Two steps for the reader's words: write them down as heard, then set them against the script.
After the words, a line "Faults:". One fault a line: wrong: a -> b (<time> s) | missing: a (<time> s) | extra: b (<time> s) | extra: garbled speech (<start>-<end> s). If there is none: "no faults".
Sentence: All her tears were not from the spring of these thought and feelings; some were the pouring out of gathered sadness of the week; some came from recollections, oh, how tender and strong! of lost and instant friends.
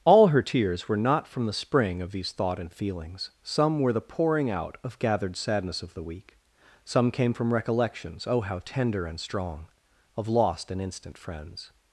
All her tears were not from the spring of these thought and feelings; some were the pouring out of gathered sadness of the week; some came from recollections, oh, how tender and strong! of lost and instant friends.
Faults:
no faults